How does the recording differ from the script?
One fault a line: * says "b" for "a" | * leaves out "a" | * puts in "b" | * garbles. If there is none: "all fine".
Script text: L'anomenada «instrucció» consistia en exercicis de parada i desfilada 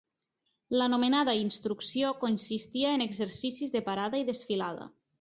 all fine